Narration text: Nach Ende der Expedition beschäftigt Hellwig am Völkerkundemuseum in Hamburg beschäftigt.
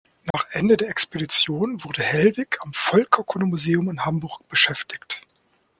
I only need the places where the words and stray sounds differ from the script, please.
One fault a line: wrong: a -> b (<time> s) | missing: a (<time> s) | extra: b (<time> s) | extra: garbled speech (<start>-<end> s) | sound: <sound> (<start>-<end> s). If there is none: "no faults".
sound: dropout (0.3-0.3 s)
wrong: beschäftigt -> wurde (1.8 s)